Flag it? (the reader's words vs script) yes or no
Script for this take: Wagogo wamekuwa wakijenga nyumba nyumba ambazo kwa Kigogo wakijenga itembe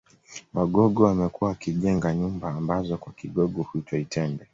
yes